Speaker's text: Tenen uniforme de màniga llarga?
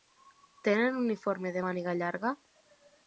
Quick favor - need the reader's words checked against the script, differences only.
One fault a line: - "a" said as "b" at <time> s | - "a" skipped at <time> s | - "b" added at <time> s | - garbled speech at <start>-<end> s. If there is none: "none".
none